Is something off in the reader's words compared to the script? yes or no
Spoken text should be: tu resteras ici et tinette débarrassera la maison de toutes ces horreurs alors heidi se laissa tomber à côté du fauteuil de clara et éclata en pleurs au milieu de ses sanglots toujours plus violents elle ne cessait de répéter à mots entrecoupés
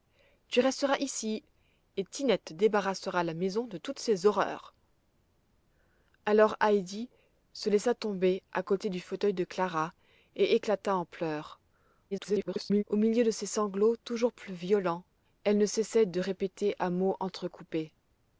yes